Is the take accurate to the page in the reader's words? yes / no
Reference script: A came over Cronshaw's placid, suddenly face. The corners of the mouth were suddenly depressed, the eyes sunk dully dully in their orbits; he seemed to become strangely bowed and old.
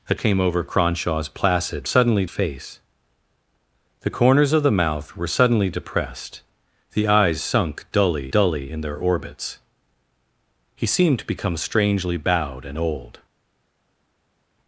yes